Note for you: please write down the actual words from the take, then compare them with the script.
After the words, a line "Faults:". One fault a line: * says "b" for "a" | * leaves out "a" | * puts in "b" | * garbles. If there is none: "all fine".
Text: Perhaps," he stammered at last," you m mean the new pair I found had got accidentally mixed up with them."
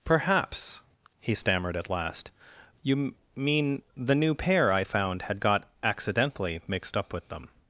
Perhaps," he stammered at last," you m mean the new pair I found had got accidentally mixed up with them."
Faults:
all fine